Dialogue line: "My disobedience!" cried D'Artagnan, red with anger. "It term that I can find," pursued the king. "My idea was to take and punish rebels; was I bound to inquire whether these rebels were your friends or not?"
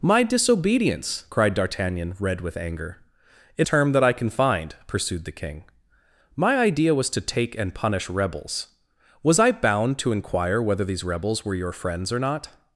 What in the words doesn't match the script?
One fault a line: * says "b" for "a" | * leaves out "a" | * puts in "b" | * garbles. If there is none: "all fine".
all fine